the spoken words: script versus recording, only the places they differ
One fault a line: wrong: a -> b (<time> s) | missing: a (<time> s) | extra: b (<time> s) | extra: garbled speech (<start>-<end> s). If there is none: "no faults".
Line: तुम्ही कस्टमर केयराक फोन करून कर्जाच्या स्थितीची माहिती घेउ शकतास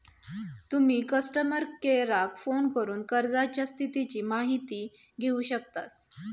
no faults